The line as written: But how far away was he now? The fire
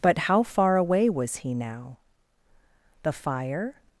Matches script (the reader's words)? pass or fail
pass